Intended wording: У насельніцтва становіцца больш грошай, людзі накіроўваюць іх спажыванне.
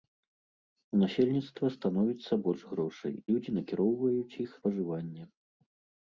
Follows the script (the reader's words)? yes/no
yes